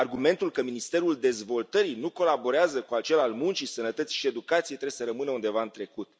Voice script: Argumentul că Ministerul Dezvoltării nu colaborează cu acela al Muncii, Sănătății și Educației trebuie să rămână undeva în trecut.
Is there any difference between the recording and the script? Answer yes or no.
no